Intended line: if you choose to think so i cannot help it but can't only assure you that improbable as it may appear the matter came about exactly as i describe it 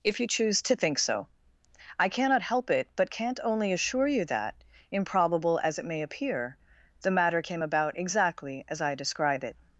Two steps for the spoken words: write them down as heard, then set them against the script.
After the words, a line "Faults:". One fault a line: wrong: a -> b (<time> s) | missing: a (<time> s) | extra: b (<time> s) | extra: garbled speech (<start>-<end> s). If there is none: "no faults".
if you choose to think so i cannot help it but can't only assure you that improbable as it may appear the matter came about exactly as i describe it
Faults:
no faults